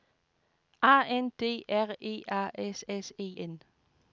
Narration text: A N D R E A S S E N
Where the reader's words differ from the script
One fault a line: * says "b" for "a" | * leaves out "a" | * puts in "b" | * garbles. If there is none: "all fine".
all fine